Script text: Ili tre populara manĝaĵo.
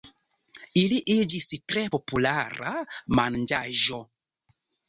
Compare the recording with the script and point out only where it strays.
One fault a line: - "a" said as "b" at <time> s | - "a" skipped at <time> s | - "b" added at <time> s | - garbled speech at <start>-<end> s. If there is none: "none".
- "iĝis" added at 1.1 s